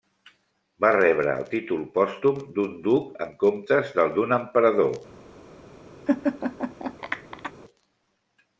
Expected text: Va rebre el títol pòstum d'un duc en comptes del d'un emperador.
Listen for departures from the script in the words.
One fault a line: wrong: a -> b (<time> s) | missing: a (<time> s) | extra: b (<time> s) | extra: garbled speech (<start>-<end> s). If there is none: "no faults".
no faults